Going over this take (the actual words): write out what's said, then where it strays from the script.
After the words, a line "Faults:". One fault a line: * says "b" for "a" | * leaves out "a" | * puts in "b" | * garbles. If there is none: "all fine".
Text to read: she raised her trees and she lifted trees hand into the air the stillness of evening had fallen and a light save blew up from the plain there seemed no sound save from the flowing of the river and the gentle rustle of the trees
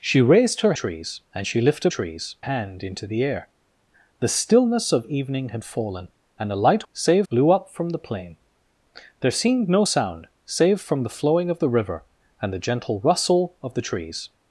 she raised her trees and she lifted trees hand into the air the stillness of evening had fallen and a light save blew up from the plain there seemed no sound save from the flowing of the river and the gentle rustle of the trees
Faults:
all fine